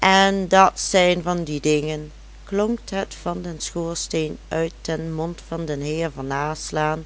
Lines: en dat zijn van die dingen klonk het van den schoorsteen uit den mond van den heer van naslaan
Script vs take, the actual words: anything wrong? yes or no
no